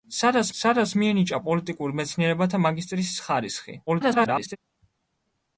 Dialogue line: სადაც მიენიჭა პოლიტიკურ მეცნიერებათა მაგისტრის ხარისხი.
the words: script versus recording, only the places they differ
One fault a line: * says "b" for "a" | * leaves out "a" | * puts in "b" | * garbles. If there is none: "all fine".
* puts in "სადაც"
* garbles